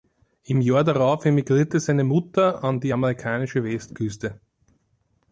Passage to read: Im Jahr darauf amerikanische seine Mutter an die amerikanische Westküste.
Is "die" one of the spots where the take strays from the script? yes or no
no